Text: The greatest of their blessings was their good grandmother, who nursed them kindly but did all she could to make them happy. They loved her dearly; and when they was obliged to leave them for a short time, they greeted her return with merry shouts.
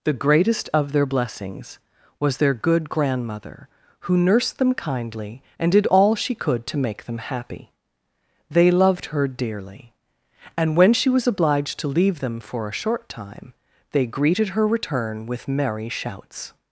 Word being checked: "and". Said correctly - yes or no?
yes